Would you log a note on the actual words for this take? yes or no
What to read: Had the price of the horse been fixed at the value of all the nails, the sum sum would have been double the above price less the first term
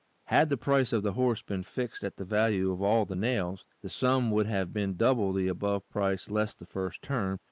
yes